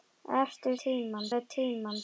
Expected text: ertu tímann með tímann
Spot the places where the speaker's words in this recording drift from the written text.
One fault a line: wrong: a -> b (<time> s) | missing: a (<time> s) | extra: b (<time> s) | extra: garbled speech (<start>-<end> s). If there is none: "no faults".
no faults